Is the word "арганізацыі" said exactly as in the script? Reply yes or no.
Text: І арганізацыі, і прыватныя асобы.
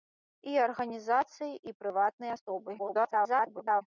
yes